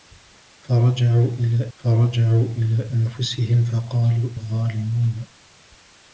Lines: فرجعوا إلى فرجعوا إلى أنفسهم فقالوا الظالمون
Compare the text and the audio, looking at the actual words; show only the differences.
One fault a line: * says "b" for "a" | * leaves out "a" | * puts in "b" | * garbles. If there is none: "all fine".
all fine